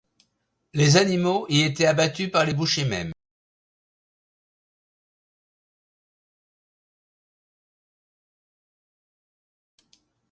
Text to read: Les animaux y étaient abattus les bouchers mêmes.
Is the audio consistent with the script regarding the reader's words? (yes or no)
no